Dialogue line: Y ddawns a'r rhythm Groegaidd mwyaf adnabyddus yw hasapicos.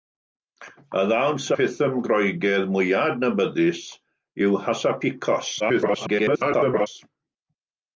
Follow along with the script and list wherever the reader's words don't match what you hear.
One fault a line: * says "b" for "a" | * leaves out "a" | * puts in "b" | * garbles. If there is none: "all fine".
* leaves out "a'r"
* garbles